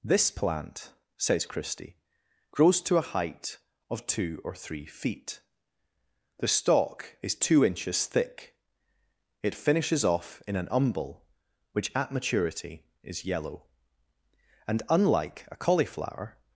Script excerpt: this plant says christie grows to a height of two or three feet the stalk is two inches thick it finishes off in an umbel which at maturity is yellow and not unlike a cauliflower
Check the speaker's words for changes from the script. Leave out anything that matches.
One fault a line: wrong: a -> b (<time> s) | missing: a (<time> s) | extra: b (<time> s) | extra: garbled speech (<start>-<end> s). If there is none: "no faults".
missing: not (14.8 s)